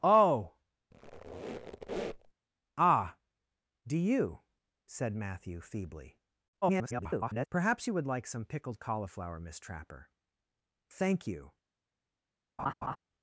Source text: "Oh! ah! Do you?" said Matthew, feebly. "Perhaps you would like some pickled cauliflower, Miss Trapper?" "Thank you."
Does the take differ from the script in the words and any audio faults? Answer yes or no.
yes